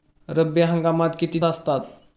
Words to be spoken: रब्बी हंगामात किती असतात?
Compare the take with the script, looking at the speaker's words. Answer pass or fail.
pass